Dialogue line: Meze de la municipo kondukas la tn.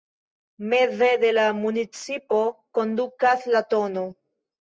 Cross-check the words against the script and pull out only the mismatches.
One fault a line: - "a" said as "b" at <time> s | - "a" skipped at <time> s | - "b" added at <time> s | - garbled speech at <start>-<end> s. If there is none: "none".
none